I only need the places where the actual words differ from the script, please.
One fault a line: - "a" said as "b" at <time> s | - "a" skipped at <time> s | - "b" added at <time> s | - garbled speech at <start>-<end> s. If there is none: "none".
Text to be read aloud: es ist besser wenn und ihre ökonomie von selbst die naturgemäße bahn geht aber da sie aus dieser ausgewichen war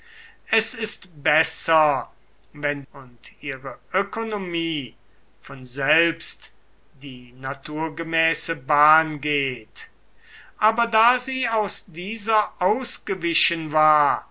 none